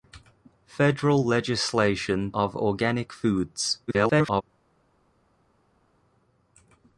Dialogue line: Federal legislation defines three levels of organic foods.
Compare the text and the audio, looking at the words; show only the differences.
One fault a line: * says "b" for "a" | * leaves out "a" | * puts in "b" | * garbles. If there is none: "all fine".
* leaves out "defines three levels"
* garbles